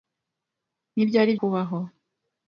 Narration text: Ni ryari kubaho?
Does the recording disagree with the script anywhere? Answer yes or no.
no